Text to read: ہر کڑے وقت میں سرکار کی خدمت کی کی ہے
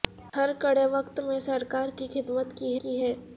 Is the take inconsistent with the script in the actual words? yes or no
no